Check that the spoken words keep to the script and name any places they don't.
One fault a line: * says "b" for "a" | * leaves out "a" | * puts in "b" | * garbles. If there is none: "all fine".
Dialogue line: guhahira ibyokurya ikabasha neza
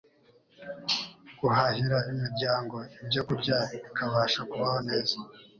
* puts in "imiryango"
* puts in "kubaho"